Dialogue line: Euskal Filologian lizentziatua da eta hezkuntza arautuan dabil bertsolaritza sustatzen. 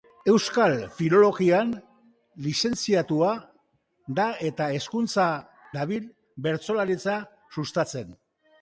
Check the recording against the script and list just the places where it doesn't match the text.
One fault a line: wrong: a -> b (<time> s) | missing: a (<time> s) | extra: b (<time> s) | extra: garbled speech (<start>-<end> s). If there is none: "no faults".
missing: arautuan (5.3 s)